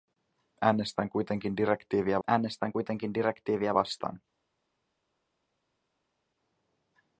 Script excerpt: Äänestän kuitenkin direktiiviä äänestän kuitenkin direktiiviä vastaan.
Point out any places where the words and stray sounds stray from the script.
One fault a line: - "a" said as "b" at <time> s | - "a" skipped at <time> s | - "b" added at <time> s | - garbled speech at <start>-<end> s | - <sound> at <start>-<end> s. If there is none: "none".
none